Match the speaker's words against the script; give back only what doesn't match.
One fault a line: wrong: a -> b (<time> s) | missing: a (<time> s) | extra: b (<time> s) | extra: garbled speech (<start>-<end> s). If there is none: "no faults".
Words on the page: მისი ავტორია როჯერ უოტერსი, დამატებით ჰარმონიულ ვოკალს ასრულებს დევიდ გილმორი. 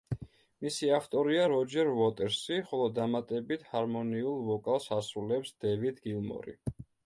extra: ხოლო (2.7 s)